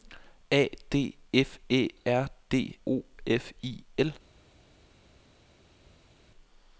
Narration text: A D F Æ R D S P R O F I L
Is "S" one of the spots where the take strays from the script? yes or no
yes